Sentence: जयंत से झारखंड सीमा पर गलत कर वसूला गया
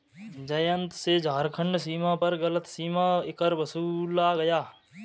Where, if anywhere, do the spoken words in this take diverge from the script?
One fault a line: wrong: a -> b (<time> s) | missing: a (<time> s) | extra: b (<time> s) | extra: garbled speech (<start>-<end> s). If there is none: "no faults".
extra: सीमा (2.7 s)